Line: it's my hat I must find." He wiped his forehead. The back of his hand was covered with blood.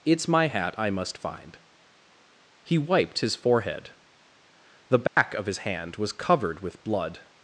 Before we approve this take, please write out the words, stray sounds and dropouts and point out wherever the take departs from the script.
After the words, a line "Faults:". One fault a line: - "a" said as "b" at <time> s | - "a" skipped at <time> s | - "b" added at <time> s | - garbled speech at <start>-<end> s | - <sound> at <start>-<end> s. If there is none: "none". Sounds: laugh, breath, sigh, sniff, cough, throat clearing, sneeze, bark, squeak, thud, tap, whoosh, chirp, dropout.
it's my hat I must find." He wiped his forehead. The back of his hand was covered with blood.
Faults:
- dropout at 5.1-5.2 s